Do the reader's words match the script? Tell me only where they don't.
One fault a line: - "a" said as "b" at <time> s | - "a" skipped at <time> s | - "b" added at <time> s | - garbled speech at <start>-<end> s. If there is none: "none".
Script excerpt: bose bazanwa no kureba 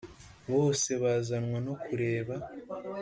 none